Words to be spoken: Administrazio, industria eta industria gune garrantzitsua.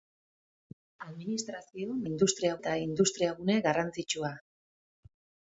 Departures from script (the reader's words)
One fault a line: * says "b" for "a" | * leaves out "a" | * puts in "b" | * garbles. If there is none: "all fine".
all fine